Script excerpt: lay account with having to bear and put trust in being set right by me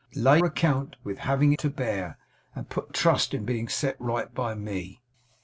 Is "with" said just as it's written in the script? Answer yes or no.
yes